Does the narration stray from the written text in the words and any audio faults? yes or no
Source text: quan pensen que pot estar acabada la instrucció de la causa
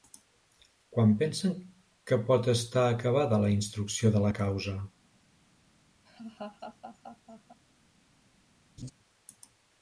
yes